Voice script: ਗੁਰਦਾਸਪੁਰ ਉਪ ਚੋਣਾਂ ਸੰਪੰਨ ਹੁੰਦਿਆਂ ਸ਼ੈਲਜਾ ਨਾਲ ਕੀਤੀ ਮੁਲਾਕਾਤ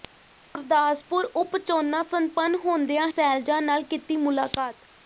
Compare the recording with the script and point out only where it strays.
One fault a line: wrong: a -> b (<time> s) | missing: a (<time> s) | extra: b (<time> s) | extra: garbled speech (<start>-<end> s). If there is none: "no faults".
no faults